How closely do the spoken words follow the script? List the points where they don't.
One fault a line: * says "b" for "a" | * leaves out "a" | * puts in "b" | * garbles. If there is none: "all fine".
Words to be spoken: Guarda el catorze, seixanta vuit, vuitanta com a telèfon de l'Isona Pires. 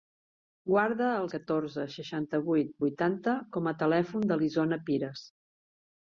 all fine